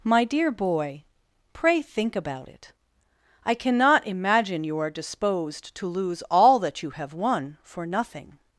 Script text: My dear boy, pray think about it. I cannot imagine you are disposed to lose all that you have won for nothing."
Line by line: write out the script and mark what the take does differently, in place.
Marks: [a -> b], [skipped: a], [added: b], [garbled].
My dear boy, pray think about it. I cannot imagine you are disposed to lose all that you have won for nothing."